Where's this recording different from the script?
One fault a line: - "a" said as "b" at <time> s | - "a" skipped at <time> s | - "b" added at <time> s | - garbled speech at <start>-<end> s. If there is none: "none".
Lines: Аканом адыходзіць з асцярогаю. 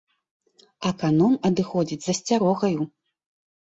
none